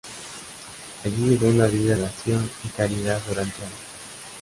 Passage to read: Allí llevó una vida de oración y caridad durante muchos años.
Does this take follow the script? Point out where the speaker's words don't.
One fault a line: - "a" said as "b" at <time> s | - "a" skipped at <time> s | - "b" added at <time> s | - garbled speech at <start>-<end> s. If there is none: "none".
- "de" skipped at 1.9 s
- "muchos" skipped at 3.6 s